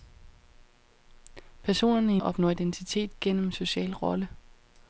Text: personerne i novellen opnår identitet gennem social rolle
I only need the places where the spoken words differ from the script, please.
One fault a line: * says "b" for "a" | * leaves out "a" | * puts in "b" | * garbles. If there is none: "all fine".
* leaves out "novellen"